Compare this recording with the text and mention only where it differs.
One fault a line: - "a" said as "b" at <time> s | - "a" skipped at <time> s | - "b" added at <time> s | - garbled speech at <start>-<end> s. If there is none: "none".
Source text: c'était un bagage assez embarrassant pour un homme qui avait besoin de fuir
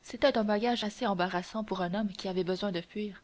none